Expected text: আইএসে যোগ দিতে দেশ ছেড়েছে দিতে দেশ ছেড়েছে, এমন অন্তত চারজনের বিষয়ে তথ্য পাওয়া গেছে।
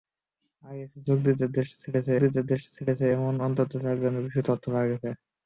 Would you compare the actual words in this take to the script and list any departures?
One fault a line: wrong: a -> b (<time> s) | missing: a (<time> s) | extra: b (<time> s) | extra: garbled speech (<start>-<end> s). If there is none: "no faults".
no faults